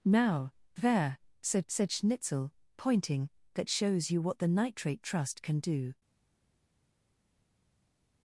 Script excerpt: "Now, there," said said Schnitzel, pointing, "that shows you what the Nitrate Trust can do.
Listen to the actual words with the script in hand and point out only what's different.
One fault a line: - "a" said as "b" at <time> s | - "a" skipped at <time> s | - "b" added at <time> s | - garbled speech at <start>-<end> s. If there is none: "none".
none